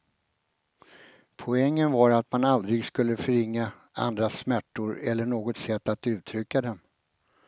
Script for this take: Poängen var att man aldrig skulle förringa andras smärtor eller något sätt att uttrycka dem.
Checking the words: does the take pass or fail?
pass